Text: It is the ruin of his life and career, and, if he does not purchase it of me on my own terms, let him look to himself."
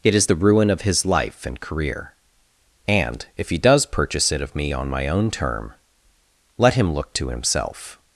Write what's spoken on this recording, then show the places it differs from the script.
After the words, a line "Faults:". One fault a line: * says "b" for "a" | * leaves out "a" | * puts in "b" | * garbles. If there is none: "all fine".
It is the ruin of his life and career, and, if he does purchase it of me on my own term, let him look to himself."
Faults:
* leaves out "not"
* says "term" for "terms"